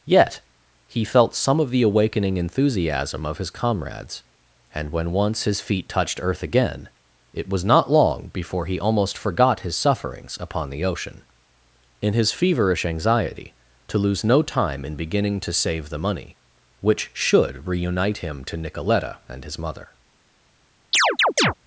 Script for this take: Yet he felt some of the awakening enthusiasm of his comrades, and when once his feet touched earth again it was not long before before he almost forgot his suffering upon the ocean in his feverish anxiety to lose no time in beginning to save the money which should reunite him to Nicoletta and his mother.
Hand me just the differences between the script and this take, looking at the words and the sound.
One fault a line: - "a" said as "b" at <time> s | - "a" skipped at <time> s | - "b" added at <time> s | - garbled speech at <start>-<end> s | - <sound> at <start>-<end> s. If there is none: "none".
- "before" skipped at 8.6 s
- "suffering" said as "sufferings" at 9.8 s
- chirp at 20.9-21.5 s